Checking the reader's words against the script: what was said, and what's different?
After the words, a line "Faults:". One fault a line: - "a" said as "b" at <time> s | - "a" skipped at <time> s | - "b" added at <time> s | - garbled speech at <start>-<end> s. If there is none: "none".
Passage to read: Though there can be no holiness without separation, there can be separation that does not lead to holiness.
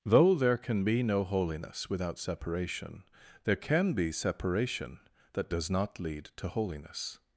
Though there can be no holiness without separation, there can be separation that does not lead to holiness.
Faults:
none